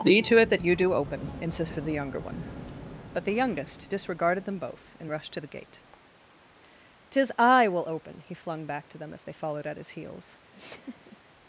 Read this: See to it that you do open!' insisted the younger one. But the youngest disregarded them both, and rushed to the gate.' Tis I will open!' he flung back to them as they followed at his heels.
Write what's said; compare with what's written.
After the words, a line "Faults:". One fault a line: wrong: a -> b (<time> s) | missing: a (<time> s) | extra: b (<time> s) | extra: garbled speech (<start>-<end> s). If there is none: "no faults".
See to it that you do open!' insisted the younger one. But the youngest disregarded them both, and rushed to the gate.' Tis I will open!' he flung back to them as they followed at his heels.
Faults:
no faults